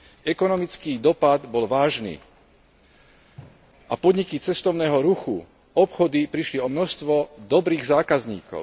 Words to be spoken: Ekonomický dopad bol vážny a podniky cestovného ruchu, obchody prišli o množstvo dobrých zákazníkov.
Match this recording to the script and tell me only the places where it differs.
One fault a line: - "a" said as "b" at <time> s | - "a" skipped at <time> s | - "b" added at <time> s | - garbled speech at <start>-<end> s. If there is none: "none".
none